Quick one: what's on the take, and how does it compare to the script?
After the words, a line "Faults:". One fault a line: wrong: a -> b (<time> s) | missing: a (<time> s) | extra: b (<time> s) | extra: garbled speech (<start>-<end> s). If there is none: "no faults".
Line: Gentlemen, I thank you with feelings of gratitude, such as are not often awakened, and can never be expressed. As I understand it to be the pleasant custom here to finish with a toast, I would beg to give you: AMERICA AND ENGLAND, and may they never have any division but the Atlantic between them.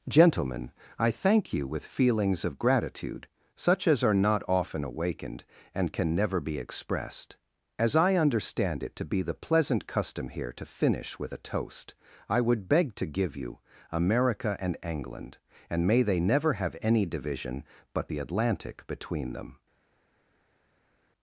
Gentlemen, I thank you with feelings of gratitude, such as are not often awakened, and can never be expressed. As I understand it to be the pleasant custom here to finish with a toast, I would beg to give you: AMERICA AND ENGLAND, and may they never have any division but the Atlantic between them.
Faults:
no faults